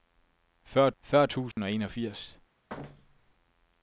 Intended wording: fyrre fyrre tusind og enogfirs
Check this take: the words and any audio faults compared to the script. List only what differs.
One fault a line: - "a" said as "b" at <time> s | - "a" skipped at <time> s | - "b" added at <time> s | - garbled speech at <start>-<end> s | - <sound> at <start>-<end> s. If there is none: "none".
- dropout at 1.5-1.6 s
- thud at 2.7-3.3 s